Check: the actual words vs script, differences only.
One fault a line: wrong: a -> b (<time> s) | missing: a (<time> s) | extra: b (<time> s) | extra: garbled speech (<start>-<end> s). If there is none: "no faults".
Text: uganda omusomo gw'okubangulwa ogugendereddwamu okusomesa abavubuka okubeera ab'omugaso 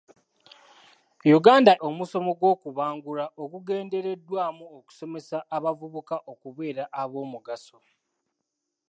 no faults